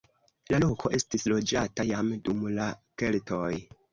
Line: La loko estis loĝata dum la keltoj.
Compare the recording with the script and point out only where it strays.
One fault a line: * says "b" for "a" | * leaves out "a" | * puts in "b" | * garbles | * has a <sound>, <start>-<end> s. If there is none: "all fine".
* puts in "jam"